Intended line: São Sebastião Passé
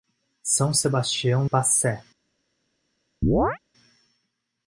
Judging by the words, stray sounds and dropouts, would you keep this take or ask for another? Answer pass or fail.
fail